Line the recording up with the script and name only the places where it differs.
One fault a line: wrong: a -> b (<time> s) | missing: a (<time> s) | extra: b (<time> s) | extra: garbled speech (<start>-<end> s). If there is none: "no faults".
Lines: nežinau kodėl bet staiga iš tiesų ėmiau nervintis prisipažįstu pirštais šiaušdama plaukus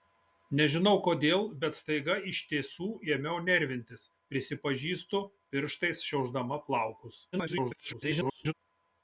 extra: garbled speech (7.3-8.5 s)